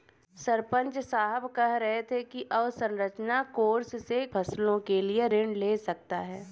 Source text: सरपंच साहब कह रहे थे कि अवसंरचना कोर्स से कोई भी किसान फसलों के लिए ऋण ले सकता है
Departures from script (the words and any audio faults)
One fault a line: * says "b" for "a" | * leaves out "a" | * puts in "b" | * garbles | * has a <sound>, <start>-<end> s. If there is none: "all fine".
* leaves out "कोई भी किसान"